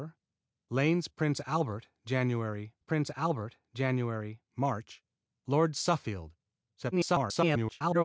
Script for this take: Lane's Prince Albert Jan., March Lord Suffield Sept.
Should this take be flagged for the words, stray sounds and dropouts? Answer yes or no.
yes